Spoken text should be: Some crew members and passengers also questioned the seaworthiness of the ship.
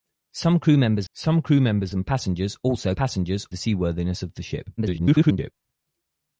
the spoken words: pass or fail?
fail